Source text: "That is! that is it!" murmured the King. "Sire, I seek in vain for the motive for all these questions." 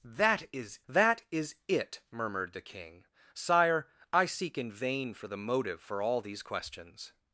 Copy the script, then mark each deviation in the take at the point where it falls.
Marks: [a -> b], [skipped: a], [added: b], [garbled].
"That is! that is it!" murmured the King. "Sire, I seek in vain for the motive for all these questions."